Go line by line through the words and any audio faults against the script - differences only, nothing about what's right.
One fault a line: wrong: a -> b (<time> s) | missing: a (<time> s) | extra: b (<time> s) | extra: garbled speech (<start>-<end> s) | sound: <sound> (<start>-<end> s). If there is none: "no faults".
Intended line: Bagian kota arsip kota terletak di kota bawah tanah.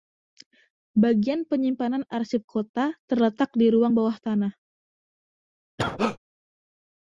wrong: kota -> penyimpanan (1.4 s)
wrong: kota -> ruang (3.7 s)
sound: cough (5.8-6.2 s)